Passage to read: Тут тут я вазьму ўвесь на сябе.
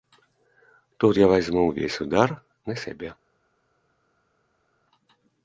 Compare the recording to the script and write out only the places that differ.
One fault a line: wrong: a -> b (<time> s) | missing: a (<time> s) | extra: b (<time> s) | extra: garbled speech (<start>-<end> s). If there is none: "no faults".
missing: тут (1.2 s)
extra: удар (2.1 s)